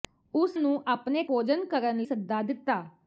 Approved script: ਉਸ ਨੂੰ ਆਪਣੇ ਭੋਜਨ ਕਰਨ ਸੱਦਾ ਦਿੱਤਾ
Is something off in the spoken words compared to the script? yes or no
no